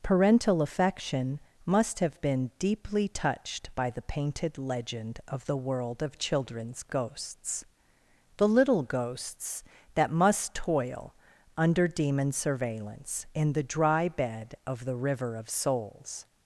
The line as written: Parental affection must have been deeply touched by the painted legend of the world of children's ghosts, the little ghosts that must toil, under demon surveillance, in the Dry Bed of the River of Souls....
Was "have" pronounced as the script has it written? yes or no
yes